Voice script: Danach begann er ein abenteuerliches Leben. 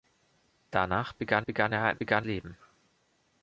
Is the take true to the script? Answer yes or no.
no